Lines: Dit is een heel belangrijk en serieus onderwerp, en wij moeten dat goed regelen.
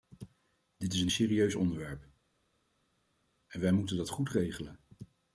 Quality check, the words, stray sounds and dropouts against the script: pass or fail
fail